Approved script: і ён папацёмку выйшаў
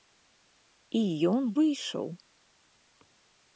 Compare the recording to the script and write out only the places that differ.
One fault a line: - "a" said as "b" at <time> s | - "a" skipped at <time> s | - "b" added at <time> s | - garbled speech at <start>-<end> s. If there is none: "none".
- "папацёмку" skipped at 1.4 s